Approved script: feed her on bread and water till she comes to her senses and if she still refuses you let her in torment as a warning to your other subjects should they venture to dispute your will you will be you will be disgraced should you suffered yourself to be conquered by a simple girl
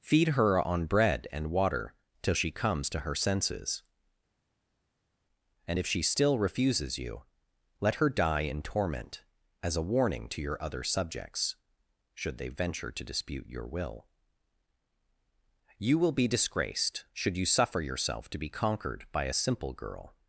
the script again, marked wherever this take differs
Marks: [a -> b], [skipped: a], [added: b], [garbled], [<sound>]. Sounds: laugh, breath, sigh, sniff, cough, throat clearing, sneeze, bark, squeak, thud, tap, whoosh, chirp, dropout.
feed her on bread and water till she comes to her senses and if she still refuses you let her [added: die] in torment as a warning to your other subjects should they venture to dispute your will you will be [skipped: you will be] disgraced should you [suffered -> suffer] yourself to be conquered by a simple girl